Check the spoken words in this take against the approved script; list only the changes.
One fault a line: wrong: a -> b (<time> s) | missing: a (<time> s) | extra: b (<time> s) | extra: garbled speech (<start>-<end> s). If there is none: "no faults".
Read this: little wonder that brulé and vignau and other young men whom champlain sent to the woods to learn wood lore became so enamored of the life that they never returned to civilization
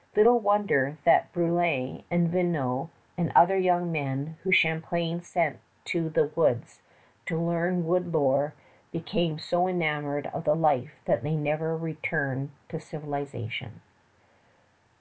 no faults